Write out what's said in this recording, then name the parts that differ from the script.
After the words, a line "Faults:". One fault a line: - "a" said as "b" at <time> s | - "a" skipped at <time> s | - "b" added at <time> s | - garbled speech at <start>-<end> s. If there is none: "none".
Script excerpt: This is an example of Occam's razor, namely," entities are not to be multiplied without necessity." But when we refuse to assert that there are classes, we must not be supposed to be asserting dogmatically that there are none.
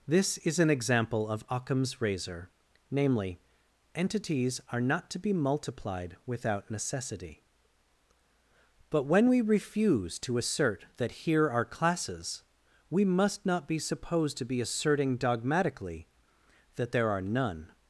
This is an example of Occam's razor, namely," entities are not to be multiplied without necessity." But when we refuse to assert that here are classes, we must not be supposed to be asserting dogmatically that there are none.
Faults:
- "there" said as "here" at 11.1 s